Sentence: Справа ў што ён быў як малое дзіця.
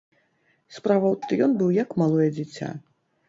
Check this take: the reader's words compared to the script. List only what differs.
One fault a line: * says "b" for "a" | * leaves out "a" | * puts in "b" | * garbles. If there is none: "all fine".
all fine